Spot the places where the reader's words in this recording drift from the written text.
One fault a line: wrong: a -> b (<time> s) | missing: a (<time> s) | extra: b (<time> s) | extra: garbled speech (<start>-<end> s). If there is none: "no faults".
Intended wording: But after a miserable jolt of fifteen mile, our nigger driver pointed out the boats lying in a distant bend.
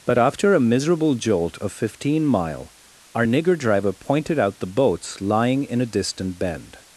no faults